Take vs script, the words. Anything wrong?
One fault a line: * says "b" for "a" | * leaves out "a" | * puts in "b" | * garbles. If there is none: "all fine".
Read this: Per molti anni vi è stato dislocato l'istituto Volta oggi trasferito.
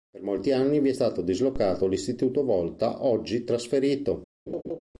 all fine